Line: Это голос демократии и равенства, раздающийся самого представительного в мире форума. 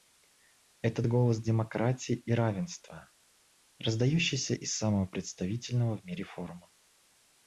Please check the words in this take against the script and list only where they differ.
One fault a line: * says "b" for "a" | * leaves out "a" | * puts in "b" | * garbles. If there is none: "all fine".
* puts in "из"